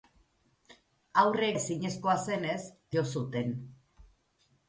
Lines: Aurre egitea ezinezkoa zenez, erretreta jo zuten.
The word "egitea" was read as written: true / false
false